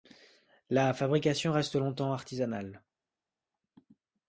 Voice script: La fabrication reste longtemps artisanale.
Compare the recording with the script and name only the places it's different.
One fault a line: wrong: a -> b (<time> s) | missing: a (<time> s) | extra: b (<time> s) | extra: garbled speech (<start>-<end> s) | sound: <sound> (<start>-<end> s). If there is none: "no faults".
no faults